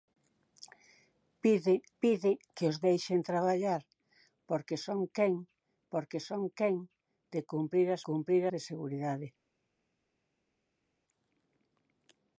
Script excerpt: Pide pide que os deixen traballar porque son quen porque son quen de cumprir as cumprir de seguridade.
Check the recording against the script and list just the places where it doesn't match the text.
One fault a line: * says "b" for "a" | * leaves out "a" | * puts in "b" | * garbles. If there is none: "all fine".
all fine